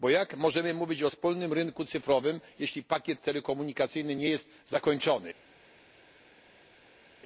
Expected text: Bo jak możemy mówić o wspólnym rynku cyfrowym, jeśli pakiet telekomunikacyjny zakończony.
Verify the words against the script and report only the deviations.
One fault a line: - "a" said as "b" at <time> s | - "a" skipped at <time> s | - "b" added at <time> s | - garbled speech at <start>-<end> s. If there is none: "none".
- "nie jest" added at 4.1 s